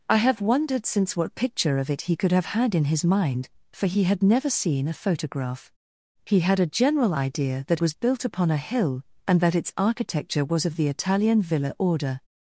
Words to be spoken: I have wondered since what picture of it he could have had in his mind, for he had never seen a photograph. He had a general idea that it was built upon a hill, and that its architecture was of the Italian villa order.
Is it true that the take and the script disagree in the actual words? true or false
true